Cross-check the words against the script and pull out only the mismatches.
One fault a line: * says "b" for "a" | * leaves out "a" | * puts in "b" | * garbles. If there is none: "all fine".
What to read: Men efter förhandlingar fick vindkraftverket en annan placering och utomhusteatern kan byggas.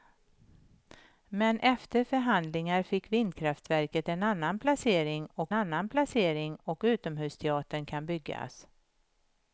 * puts in "annan placering och"